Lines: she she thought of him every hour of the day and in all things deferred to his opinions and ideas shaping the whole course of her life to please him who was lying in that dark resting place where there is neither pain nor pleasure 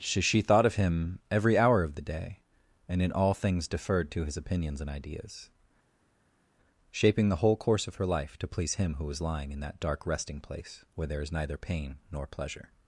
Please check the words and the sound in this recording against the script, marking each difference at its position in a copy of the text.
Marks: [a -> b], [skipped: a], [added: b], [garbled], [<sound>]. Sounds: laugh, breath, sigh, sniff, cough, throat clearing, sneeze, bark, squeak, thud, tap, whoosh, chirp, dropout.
she she thought of him every hour of the day and in all things deferred to his opinions and ideas shaping the whole course of her life to please him who was lying in that dark resting place where there is neither pain nor pleasure